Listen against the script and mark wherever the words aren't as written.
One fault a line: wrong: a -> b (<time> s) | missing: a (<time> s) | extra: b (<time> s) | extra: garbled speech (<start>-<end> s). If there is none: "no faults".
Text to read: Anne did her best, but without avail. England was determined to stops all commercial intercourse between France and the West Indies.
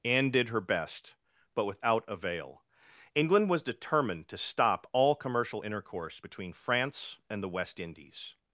wrong: stops -> stop (4.4 s)